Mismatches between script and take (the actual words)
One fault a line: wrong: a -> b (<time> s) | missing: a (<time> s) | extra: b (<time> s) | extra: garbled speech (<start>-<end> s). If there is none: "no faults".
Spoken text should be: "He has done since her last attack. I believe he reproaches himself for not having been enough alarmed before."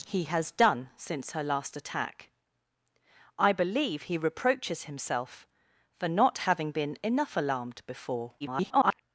extra: garbled speech (8.4-9.0 s)